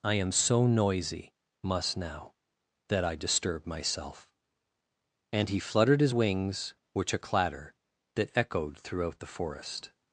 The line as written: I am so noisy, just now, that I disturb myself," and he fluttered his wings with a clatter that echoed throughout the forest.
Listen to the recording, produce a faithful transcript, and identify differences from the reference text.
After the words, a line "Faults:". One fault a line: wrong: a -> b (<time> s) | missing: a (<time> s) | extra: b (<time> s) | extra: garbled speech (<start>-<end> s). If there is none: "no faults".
I am so noisy, must now, that I disturb myself," and he fluttered his wings which a clatter that echoed throughout the forest.
Faults:
wrong: just -> must (1.6 s)
wrong: with -> which (6.9 s)